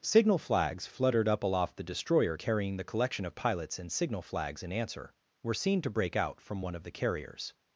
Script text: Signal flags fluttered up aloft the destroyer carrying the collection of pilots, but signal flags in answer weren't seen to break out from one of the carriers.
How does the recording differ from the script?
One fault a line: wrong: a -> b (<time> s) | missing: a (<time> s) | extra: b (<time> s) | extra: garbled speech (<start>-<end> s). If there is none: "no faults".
wrong: but -> and (3.8 s)
wrong: weren't -> were (5.4 s)